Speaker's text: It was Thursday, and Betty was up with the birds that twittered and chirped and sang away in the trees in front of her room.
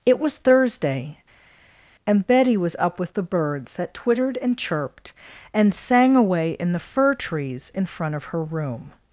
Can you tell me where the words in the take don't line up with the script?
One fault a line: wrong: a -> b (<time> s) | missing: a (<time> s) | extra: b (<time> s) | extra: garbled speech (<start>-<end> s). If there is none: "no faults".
extra: fir (6.8 s)